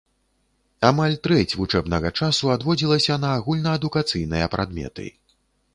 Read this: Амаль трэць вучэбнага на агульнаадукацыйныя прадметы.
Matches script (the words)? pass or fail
fail